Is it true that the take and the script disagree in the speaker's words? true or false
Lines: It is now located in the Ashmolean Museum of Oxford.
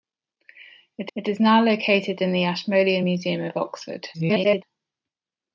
true